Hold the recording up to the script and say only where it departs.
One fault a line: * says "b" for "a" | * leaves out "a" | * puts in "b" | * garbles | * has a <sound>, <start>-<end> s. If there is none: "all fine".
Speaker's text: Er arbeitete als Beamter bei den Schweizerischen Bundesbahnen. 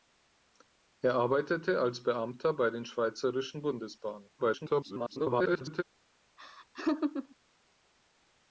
* garbles
* has a laugh, 6.4-7.4 s